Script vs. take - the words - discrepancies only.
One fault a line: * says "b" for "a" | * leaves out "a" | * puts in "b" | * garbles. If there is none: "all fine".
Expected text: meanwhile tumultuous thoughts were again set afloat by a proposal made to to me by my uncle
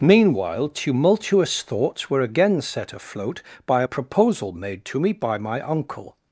* leaves out "to"